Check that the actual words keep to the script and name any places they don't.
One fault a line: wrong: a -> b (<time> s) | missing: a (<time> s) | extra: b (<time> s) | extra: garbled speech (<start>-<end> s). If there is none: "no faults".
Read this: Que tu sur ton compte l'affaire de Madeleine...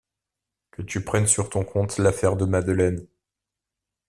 extra: prennes (1.0 s)